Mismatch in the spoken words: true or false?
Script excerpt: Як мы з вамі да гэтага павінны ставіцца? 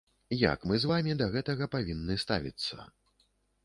false